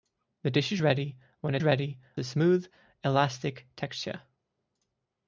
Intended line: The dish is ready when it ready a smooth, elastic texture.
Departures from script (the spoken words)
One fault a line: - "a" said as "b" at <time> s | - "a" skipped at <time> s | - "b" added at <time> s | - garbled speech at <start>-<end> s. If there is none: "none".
none